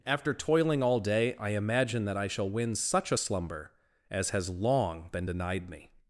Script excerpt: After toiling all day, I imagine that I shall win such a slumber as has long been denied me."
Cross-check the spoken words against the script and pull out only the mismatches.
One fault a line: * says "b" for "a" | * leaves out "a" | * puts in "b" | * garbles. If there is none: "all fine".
all fine